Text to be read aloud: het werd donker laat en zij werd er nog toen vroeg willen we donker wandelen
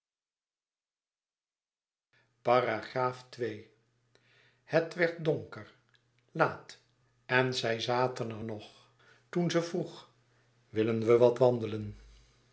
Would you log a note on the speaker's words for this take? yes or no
yes